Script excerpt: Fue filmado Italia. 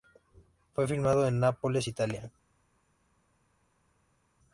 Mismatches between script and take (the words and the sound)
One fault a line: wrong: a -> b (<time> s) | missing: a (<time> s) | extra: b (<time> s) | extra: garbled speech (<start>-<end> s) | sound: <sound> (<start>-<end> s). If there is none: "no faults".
extra: en Nápoles (1.3 s)